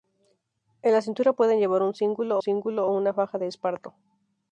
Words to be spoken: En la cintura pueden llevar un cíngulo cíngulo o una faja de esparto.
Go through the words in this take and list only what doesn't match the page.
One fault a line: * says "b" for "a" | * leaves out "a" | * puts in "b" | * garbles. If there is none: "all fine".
all fine